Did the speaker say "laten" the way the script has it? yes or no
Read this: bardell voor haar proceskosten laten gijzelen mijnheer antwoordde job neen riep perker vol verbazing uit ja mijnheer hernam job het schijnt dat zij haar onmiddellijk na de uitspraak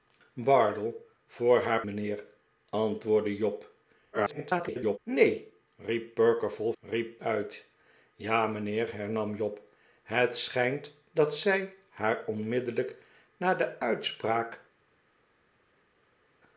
no